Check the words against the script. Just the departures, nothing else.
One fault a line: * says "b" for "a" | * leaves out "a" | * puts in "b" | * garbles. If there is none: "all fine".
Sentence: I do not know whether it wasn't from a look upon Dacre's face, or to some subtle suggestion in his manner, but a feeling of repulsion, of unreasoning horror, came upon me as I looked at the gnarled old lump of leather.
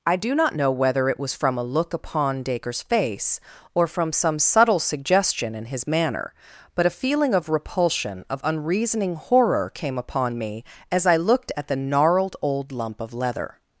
* says "was" for "wasn't"
* says "from" for "to"